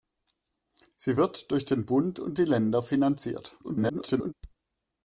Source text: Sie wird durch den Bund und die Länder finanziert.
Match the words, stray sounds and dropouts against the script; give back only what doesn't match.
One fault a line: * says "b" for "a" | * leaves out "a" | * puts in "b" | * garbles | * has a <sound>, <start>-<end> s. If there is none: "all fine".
* garbles